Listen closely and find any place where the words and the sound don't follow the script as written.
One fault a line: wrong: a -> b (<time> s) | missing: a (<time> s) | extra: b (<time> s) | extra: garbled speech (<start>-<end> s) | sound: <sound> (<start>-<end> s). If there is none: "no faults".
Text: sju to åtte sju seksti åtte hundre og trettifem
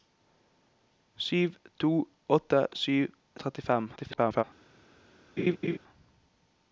missing: seksti åtte hundre (3.0 s)
extra: garbled speech (4.0-4.4 s)
sound: laugh (5.4-5.8 s)